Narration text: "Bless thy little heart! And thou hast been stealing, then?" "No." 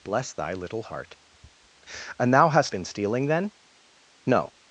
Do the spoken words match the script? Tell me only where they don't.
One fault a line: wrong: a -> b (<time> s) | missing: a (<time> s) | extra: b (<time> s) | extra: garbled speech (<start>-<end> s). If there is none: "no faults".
no faults